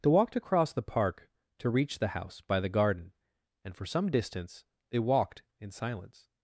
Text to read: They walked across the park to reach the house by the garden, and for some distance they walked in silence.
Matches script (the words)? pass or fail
pass